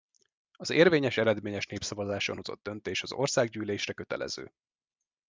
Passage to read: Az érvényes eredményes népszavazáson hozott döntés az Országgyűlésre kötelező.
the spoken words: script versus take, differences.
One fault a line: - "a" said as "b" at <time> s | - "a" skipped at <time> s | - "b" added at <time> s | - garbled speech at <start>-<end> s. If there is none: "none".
none